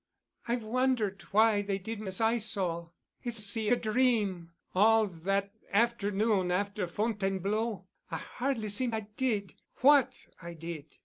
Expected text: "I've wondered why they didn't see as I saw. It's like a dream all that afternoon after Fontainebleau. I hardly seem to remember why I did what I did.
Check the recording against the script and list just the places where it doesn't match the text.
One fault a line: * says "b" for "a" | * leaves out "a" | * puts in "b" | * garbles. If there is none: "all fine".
* leaves out "see"
* says "see" for "like"
* leaves out "to remember why"